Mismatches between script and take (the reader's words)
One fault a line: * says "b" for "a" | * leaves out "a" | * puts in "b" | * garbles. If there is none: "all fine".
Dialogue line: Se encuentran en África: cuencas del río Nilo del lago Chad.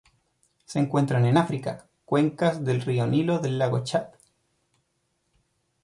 all fine